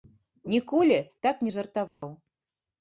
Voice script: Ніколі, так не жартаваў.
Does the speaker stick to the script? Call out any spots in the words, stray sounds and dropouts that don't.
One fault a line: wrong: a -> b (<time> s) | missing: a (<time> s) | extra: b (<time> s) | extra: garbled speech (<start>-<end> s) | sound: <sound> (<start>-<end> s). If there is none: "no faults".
sound: dropout (1.9-2.0 s)